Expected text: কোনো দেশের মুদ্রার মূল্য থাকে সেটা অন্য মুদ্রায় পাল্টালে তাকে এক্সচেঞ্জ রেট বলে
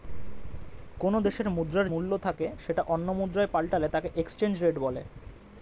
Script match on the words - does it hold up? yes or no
yes